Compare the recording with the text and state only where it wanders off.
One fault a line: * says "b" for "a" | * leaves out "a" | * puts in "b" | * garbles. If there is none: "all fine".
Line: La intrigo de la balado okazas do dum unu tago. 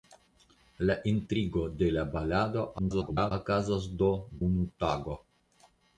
* garbles
* leaves out "dum"